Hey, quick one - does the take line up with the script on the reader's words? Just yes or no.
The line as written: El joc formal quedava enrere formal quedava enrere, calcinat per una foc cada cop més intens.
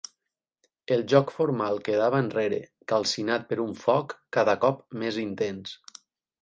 no